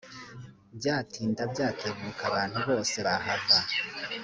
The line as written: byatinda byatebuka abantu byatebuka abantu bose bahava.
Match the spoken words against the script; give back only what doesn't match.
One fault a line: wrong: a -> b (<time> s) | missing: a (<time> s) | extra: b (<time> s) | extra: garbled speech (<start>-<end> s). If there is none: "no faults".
missing: byatebuka abantu (2.6 s)